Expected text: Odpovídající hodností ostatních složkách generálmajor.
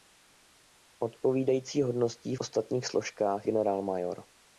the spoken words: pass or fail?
pass